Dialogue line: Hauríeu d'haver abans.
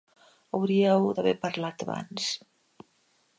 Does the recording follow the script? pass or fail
fail